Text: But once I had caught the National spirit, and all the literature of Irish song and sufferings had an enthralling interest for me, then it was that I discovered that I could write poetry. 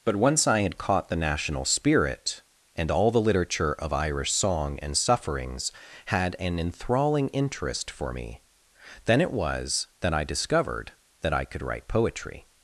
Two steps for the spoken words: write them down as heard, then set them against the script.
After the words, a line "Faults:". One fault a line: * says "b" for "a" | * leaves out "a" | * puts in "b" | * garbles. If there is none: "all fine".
But once I had caught the National spirit, and all the literature of Irish song and sufferings had an enthralling interest for me, then it was that I discovered that I could write poetry.
Faults:
all fine